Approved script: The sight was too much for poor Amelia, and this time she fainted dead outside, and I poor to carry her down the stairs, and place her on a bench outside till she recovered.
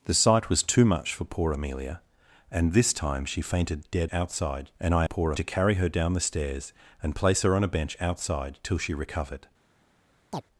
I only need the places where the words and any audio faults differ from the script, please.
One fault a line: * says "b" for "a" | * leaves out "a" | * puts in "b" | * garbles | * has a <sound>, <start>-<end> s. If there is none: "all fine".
* has a chirp, 10.3-10.4 s